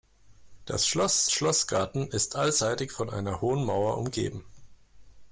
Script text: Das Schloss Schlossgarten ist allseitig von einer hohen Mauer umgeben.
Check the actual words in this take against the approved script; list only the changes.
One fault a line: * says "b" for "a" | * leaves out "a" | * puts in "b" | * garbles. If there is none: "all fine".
all fine